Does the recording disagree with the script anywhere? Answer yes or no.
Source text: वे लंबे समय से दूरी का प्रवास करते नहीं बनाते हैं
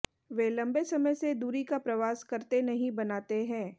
no